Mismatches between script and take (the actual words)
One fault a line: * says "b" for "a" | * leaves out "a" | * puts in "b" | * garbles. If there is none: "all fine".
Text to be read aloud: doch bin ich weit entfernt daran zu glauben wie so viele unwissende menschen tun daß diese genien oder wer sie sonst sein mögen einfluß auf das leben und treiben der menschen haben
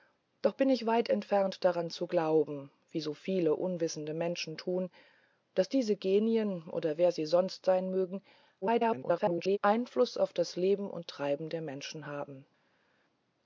* garbles